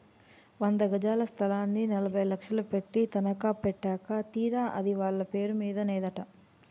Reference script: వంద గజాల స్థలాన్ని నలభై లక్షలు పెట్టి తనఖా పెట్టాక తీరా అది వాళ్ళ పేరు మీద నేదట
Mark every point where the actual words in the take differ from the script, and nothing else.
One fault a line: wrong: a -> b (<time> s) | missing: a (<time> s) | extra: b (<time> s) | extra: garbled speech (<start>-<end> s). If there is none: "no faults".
no faults